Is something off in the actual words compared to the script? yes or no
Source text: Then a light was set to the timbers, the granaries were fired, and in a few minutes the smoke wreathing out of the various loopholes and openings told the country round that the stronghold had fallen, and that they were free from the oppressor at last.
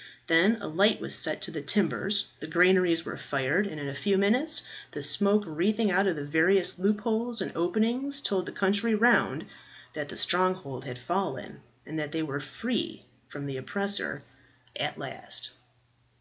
no